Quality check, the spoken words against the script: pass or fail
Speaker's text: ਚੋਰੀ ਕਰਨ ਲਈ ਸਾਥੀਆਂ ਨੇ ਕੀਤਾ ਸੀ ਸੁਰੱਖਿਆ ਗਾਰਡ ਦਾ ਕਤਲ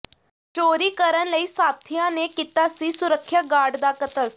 pass